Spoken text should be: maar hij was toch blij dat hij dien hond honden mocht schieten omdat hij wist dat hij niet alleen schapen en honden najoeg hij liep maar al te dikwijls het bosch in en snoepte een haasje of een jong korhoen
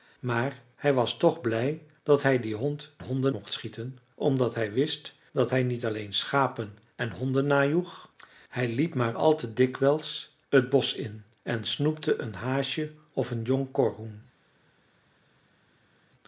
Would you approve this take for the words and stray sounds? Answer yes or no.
yes